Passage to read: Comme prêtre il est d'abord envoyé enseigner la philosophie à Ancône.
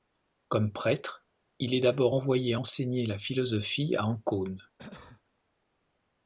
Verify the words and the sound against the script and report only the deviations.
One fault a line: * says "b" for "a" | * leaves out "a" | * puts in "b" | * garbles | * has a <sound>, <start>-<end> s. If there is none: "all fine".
* has a cough, 4.8-5.2 s